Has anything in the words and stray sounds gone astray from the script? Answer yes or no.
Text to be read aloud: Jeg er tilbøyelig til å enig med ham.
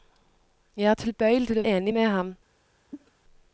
yes